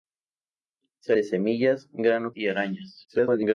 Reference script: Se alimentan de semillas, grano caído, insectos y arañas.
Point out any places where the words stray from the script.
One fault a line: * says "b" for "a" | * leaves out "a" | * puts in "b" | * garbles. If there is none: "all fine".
* leaves out "alimentan"
* leaves out "caído insectos"
* garbles